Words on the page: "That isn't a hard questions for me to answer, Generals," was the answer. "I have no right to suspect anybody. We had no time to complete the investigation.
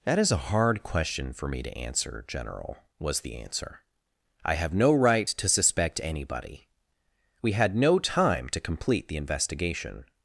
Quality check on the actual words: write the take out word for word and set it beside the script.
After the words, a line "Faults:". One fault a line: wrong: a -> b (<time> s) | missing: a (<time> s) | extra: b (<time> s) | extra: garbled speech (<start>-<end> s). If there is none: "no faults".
"That is a hard question for me to answer, General," was the answer. "I have no right to suspect anybody. We had no time to complete the investigation.
Faults:
wrong: isn't -> is (0.2 s)
wrong: questions -> question (0.8 s)
wrong: Generals -> General (2.3 s)